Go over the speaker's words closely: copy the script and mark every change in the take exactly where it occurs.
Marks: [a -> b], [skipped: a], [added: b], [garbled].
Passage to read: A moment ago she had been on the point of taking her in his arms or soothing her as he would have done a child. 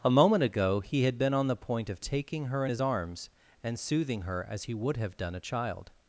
A moment ago [she -> he] had been on the point of taking her in his arms [or -> and] soothing her as he would have done a child.